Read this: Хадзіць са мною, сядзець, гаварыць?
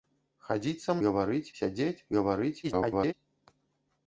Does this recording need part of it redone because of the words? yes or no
yes